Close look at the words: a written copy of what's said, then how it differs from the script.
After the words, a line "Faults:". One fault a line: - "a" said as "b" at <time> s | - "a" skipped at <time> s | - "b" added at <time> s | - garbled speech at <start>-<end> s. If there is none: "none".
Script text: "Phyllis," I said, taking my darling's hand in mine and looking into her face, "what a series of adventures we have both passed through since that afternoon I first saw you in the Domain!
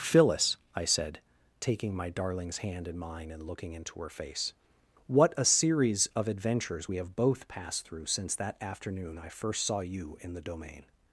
"Phyllis," I said, taking my darling's hand in mine and looking into her face, "what a series of adventures we have both passed through since that afternoon I first saw you in the Domain!
Faults:
none